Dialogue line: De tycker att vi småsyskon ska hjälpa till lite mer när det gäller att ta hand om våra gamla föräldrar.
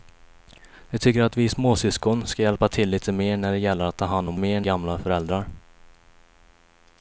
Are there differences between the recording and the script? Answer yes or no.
yes